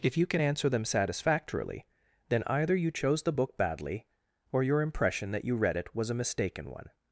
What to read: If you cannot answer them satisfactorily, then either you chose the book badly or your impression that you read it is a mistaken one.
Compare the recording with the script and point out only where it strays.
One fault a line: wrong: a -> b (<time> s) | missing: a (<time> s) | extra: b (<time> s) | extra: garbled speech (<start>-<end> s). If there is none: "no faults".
wrong: cannot -> can (0.2 s)
wrong: is -> was (6.0 s)